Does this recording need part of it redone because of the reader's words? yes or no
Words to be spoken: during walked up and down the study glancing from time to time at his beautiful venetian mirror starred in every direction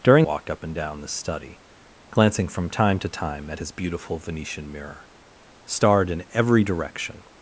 no